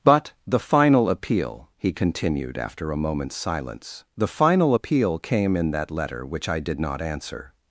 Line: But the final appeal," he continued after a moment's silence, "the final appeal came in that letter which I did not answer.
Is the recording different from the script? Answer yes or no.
no